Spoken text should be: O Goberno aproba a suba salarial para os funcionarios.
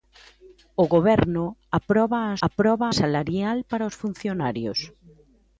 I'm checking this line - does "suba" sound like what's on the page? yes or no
no